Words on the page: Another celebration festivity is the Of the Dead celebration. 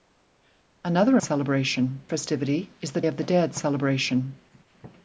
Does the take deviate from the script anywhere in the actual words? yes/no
no